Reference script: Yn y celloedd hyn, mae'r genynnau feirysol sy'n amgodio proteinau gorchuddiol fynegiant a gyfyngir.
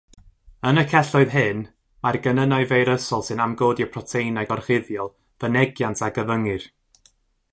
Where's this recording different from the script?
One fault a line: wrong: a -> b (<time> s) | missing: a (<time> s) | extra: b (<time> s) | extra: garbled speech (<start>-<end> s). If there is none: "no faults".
no faults